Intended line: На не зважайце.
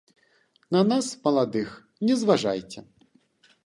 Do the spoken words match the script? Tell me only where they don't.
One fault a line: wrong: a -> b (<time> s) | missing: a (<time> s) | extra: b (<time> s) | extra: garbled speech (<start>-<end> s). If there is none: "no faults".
extra: нас маладых (0.8 s)